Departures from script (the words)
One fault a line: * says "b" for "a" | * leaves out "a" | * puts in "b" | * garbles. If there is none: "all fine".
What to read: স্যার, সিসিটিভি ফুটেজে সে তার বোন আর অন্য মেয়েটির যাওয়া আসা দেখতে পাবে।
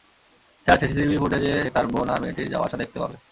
* leaves out "সে"
* leaves out "অন্য"